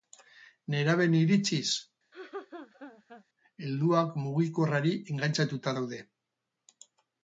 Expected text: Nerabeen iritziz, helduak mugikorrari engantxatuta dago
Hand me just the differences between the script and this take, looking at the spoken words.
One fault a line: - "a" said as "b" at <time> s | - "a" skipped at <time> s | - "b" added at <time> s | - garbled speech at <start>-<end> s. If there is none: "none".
- "dago" said as "daude" at 5.8 s